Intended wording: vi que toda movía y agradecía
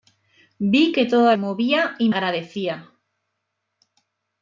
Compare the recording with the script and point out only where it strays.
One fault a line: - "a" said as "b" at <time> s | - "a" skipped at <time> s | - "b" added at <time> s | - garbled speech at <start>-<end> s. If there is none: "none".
none